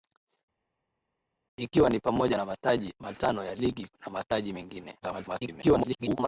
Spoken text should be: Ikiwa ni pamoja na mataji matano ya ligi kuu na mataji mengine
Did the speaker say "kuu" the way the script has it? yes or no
no